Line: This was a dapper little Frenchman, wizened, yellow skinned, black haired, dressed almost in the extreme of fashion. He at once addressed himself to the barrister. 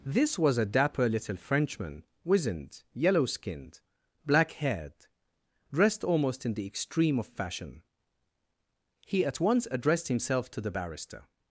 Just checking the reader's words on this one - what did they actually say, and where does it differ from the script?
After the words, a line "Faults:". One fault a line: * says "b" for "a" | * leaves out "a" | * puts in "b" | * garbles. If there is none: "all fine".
This was a dapper little Frenchman, wizened, yellow skinned, black haired, dressed almost in the extreme of fashion. He at once addressed himself to the barrister.
Faults:
all fine